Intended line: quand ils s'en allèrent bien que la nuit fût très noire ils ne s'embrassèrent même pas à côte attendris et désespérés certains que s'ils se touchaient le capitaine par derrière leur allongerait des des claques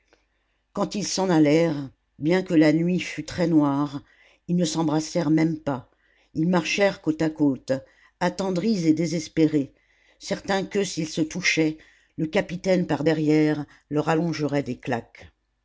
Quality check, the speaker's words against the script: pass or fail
fail